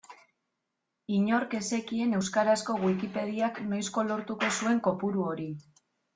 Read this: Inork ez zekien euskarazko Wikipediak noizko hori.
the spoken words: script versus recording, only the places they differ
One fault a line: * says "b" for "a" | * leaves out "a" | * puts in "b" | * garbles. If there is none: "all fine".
* puts in "lortuko zuen kopuru"